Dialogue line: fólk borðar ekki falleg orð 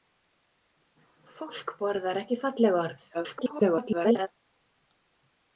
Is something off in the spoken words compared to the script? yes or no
yes